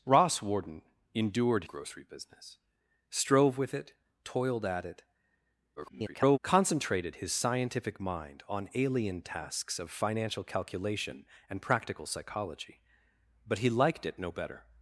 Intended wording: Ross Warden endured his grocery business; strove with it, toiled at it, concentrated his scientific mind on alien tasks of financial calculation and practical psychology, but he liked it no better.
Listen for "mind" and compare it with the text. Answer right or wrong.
right